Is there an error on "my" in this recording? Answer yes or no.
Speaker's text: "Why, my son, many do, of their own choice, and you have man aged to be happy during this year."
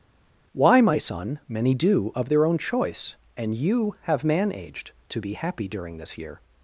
no